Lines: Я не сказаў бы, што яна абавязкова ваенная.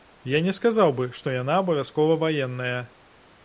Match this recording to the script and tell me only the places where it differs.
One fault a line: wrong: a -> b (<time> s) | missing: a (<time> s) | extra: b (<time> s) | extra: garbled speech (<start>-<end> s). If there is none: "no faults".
no faults